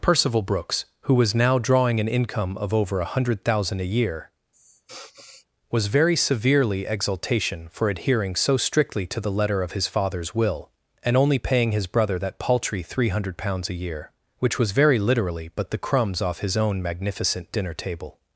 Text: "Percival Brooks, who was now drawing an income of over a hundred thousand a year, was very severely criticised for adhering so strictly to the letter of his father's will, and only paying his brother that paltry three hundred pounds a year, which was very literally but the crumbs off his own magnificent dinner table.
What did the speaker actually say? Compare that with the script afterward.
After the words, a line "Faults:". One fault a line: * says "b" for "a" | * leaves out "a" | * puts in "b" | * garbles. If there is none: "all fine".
"Percival Brooks, who was now drawing an income of over a hundred thousand a year, was very severely exultation for adhering so strictly to the letter of his father's will, and only paying his brother that paltry three hundred pounds a year, which was very literally but the crumbs off his own magnificent dinner table.
Faults:
* says "exultation" for "criticised"